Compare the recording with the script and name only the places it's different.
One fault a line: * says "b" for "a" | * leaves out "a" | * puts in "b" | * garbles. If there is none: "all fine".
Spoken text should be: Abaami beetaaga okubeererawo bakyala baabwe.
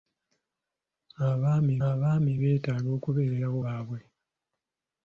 * puts in "abaami"
* leaves out "bakyala"